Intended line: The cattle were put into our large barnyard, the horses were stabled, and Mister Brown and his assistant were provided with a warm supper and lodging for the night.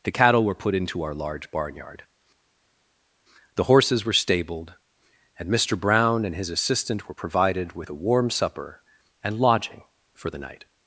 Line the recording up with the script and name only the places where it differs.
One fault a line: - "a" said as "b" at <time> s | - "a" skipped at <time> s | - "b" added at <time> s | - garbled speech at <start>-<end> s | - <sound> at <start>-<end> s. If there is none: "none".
none